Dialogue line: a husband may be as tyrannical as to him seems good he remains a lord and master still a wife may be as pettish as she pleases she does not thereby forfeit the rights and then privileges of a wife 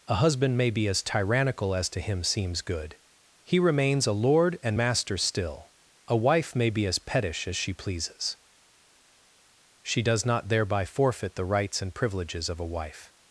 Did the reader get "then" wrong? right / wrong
wrong